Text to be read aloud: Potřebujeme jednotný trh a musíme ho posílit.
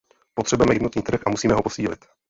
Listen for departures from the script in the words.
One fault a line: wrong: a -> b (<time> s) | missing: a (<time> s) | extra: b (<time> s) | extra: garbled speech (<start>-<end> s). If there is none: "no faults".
no faults